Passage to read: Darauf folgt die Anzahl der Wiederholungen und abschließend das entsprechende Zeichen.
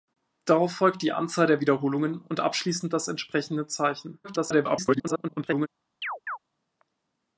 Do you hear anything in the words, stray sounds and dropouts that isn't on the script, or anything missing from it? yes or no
yes